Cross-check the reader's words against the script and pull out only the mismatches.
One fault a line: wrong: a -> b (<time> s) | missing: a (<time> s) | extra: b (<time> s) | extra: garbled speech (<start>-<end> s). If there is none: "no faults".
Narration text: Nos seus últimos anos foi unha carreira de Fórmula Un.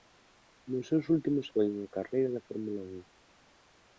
missing: anos (1.5 s)